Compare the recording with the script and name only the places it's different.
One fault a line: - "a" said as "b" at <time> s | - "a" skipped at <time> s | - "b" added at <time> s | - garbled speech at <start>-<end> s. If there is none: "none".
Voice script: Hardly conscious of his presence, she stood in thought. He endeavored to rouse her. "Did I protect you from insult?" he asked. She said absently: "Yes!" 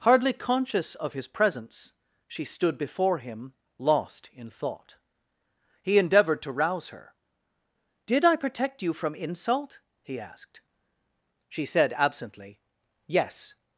- "before him lost" added at 2.8 s